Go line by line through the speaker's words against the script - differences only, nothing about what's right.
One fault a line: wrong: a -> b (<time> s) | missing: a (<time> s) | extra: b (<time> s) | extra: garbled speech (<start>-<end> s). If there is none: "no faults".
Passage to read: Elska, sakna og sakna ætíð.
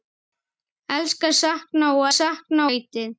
no faults